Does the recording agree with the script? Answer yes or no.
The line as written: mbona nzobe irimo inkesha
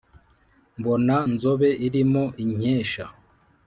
yes